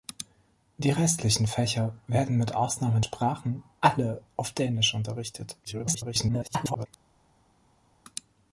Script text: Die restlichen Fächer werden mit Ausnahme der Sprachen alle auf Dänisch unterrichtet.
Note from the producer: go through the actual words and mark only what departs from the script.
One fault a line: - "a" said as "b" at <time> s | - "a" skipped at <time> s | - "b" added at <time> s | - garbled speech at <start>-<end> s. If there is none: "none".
- "der" skipped at 3.0 s
- garbled speech at 5.6-6.9 s